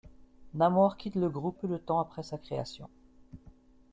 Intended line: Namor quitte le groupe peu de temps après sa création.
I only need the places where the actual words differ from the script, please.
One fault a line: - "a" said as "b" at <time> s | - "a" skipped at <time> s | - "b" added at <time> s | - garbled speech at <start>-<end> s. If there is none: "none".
none